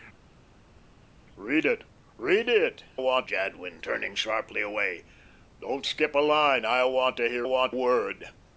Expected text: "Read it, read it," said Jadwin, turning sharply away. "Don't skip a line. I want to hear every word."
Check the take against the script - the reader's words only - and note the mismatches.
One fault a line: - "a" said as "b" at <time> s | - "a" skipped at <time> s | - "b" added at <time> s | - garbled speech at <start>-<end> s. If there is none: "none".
- "said" said as "want" at 3.0 s
- "every" said as "want" at 7.4 s